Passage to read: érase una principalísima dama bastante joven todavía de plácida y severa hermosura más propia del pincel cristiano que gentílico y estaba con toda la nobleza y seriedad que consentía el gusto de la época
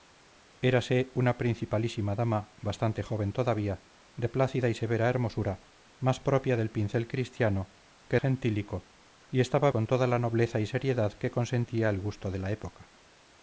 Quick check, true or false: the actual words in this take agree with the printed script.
true